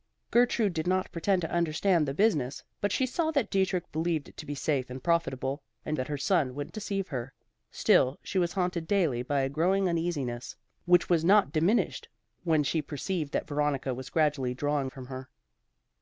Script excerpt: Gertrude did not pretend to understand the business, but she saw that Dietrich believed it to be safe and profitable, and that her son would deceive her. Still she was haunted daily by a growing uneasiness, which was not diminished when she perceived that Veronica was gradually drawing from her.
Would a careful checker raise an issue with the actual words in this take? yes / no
no